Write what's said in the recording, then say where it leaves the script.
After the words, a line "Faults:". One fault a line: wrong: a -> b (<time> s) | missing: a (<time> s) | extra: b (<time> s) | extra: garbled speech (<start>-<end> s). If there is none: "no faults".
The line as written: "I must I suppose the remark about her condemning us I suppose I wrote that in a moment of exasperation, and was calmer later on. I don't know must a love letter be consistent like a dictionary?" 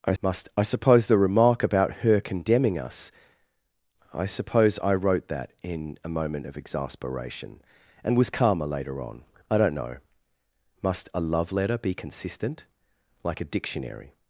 "I must I suppose the remark about her condemning us I suppose I wrote that in a moment of exasperation, and was calmer later on. I don't know must a love letter be consistent like a dictionary?"
Faults:
no faults